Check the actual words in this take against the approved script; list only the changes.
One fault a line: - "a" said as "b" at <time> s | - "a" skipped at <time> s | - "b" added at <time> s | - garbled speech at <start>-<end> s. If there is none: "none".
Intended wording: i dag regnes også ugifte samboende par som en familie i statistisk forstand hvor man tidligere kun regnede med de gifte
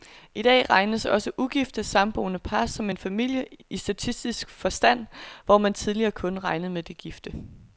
none